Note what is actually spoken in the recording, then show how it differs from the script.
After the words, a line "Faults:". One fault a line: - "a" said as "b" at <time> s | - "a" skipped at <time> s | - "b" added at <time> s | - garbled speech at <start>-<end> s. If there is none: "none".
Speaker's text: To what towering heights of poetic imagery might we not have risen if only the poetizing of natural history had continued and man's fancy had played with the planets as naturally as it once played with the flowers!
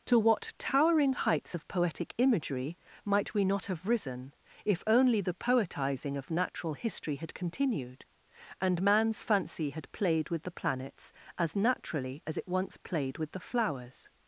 To what towering heights of poetic imagery might we not have risen if only the poetizing of natural history had continued and man's fancy had played with the planets as naturally as it once played with the flowers!
Faults:
none